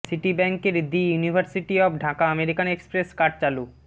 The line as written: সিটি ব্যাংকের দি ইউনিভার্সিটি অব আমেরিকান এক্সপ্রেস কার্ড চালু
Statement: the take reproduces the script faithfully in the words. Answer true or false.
false